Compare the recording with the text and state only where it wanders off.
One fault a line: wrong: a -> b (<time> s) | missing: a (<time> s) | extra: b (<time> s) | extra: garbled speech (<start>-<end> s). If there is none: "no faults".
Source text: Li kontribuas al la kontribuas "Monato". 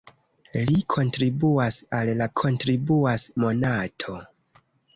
no faults